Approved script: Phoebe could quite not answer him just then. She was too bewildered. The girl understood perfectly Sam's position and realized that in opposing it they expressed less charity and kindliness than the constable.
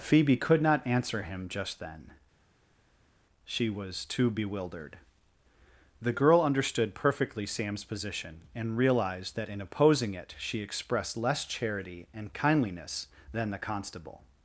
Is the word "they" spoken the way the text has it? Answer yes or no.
no